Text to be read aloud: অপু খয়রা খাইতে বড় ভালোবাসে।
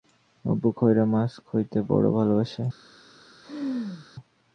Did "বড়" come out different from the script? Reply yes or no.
no